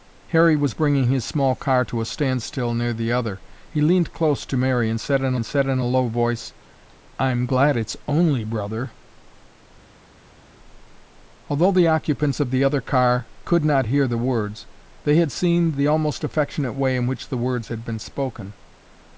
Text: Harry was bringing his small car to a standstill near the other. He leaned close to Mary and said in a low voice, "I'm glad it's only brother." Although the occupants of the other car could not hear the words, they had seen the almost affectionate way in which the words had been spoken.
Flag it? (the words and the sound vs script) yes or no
yes